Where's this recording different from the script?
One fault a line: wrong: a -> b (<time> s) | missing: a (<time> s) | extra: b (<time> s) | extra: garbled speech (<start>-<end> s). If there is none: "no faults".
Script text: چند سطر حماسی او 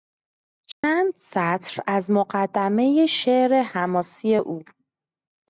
extra: از مقدمهی شعر (1.9 s)